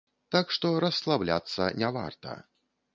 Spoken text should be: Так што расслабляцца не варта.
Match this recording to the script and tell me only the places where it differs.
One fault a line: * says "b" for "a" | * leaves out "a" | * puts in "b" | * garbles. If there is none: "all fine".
all fine